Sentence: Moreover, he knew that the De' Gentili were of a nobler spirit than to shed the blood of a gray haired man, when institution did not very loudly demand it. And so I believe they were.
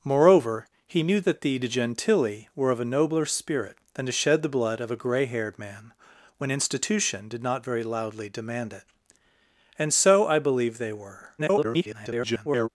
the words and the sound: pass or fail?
fail